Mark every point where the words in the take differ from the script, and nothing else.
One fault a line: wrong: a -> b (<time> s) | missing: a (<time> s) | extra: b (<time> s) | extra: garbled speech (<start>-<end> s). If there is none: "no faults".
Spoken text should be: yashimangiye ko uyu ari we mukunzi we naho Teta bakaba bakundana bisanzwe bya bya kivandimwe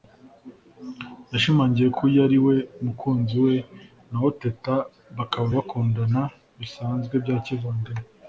missing: bya (7.4 s)